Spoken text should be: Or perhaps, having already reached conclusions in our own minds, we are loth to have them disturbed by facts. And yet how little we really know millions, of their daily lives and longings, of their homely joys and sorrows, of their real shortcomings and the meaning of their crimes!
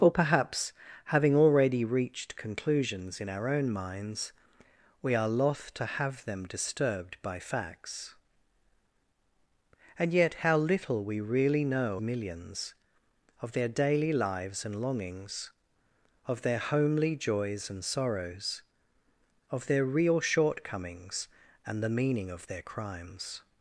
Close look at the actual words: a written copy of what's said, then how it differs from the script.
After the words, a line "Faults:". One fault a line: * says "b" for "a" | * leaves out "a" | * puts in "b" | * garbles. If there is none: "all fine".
Or perhaps, having already reached conclusions in our own minds, we are loth to have them disturbed by facts. And yet how little we really know millions, of their daily lives and longings, of their homely joys and sorrows, of their real shortcomings and the meaning of their crimes!
Faults:
all fine